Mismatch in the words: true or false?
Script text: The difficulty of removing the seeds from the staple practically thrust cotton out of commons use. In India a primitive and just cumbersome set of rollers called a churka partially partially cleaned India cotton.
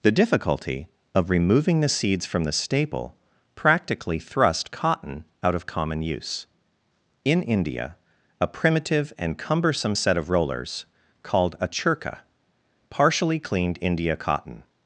true